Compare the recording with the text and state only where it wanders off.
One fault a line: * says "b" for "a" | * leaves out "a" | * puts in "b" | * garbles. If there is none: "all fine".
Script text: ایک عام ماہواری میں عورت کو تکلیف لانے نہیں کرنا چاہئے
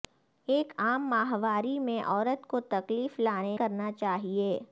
* leaves out "نہیں"